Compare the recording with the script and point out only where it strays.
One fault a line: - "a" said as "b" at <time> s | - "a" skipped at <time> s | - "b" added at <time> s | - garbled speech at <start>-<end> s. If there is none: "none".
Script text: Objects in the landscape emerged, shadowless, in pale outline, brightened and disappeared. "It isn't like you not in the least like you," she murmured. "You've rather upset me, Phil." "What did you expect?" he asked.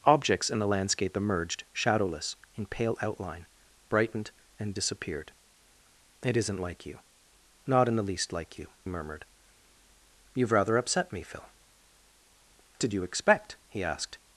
- "she" skipped at 8.7 s
- "What" skipped at 11.5 s